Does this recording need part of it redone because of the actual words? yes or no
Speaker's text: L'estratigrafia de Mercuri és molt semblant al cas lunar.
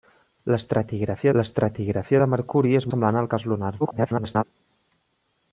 yes